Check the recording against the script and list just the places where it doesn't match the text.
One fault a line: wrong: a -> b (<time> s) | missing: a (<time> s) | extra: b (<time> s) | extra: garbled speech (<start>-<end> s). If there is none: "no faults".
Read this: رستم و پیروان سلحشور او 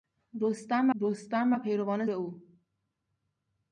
extra: رستم (1.0 s)
missing: سلحشور (2.1 s)